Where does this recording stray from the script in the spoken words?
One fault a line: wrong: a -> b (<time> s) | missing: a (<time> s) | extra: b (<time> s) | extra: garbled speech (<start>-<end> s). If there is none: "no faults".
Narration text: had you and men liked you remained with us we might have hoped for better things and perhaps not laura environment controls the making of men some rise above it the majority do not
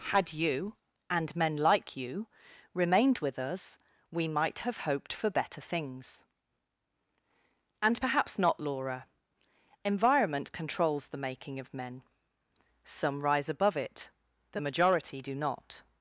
wrong: liked -> like (1.6 s)